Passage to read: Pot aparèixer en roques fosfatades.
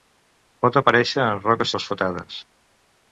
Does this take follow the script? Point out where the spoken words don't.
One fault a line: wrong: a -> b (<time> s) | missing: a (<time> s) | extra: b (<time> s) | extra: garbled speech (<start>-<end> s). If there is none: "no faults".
no faults